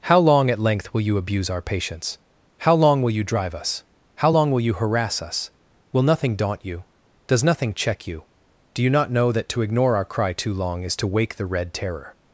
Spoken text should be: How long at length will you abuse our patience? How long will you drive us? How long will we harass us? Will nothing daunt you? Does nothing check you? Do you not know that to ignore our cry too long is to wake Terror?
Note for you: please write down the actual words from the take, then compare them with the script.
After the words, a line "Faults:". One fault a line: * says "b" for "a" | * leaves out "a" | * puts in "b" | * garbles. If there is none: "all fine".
How long at length will you abuse our patience? How long will you drive us? How long will you harass us? Will nothing daunt you? Does nothing check you? Do you not know that to ignore our cry too long is to wake the Red Terror?
Faults:
* says "you" for "we"
* puts in "the Red"